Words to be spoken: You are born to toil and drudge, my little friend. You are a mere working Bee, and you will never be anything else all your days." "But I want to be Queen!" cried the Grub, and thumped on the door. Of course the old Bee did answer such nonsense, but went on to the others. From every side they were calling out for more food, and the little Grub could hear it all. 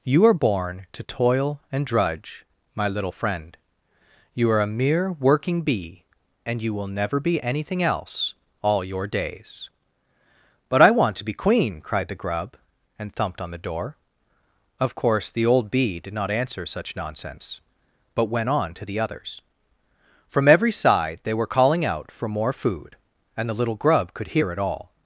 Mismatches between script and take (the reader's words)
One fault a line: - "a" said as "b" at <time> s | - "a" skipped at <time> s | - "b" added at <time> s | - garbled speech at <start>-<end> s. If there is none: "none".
- "not" added at 16.1 s